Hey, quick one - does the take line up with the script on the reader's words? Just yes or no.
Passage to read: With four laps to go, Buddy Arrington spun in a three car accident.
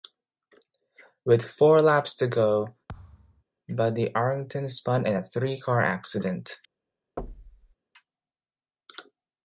yes